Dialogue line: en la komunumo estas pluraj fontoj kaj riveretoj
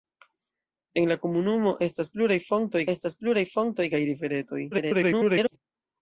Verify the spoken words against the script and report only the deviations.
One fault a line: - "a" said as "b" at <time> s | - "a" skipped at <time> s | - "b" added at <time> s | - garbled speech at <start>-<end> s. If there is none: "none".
- "estas pluraj fontoj" added at 3.0 s
- garbled speech at 4.7-5.6 s